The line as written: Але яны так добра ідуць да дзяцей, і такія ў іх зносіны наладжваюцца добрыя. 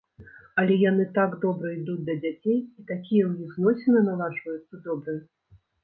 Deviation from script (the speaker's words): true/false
false